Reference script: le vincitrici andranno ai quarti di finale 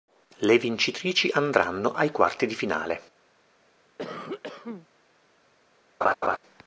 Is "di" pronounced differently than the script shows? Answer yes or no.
no